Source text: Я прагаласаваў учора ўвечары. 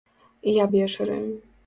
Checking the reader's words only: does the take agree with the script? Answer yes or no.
no